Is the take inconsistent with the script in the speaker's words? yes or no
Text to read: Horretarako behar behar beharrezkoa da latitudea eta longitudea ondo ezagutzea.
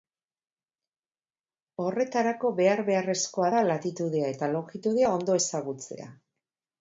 yes